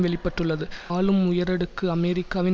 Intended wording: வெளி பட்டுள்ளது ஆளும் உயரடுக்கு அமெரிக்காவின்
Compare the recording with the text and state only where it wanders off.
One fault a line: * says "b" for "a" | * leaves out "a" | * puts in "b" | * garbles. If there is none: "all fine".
all fine